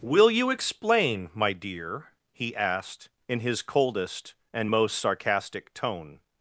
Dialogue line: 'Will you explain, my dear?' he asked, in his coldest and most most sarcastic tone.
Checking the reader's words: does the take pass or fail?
fail